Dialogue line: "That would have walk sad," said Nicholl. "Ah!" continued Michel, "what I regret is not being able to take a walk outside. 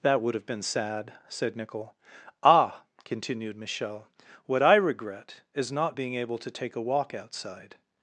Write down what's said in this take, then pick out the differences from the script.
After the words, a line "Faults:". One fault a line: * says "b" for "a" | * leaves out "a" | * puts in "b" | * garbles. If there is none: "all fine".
"That would have been sad," said Nicholl. "Ah!" continued Michel, "what I regret is not being able to take a walk outside.
Faults:
* says "been" for "walk"